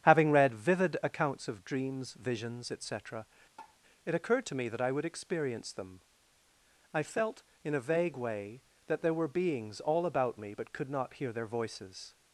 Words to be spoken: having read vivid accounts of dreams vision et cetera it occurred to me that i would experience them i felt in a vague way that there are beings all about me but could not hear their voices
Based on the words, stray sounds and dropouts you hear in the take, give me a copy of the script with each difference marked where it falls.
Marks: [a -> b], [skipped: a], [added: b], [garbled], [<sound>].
having read vivid accounts of dreams [vision -> visions] et cetera [tap] it occurred to me that i would experience them i felt in a vague way that there [are -> were] beings all about me but could not hear their voices